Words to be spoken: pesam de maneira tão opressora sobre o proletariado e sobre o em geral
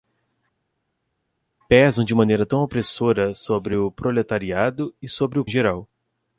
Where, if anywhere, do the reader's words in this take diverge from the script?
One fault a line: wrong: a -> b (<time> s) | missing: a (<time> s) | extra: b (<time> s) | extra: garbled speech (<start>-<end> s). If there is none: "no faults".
no faults